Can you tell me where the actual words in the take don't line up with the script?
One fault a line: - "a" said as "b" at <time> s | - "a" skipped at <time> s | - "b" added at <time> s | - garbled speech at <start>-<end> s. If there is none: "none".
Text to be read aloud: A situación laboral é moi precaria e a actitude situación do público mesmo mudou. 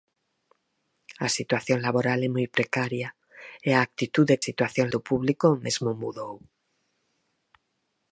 none